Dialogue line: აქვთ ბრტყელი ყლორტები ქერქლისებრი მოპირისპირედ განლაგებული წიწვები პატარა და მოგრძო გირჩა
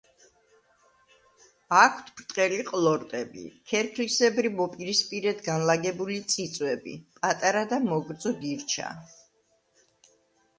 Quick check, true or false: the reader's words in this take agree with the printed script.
true